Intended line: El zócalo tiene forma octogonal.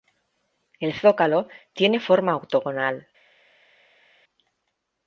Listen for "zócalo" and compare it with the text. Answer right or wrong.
right